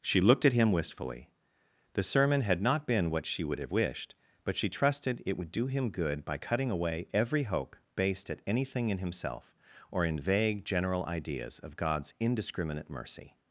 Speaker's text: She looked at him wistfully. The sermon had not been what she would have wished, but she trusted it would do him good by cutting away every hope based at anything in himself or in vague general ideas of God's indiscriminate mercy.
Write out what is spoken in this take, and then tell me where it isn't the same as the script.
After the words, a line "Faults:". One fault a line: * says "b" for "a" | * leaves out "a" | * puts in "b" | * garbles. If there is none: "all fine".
She looked at him wistfully. The sermon had not been what she would have wished, but she trusted it would do him good by cutting away every hope based at anything in himself or in vague general ideas of God's indiscriminate mercy.
Faults:
all fine